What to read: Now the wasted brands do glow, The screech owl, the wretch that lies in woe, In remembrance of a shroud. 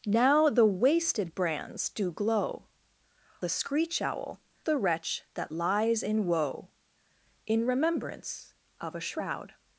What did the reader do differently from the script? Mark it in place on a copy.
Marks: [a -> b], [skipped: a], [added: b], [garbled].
Now the wasted brands do glow, The screech owl, the wretch that lies in woe, In remembrance of a shroud.